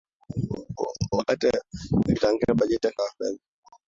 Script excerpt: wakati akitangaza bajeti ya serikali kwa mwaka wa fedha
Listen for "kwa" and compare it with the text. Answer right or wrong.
wrong